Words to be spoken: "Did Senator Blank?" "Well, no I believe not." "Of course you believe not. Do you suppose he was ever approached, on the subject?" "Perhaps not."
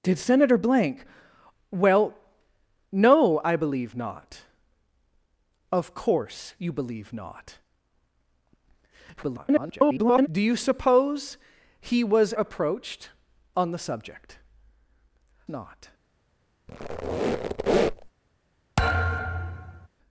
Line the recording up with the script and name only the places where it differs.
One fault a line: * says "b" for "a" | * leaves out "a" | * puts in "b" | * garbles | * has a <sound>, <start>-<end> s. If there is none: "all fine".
* garbles
* leaves out "ever"
* leaves out "Perhaps"
* has a squeak, 16.7-18.1 s
* has a thud, 18.8-19.9 s